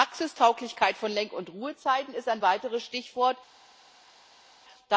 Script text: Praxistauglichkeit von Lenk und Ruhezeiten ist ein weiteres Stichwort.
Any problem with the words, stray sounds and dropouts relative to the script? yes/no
no